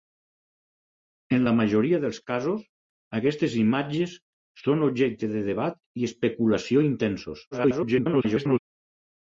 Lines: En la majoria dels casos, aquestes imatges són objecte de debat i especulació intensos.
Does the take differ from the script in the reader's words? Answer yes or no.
yes